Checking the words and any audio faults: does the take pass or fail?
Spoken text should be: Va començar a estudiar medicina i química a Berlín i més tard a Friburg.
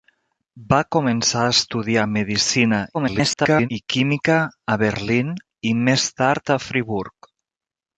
fail